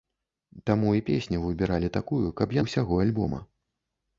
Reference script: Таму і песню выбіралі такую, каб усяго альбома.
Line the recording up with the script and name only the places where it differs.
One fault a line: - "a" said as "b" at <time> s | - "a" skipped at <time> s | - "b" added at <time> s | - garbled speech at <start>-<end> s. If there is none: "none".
none